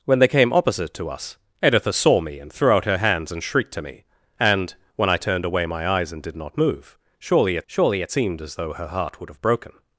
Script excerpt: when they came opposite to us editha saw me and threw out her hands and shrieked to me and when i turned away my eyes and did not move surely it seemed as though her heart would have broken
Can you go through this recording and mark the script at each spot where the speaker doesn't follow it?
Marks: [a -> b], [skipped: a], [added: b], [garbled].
when they came opposite to us editha saw me and threw out her hands and shrieked to me and when i turned away my eyes and did not move surely it [added: surely it] seemed as though her heart would have broken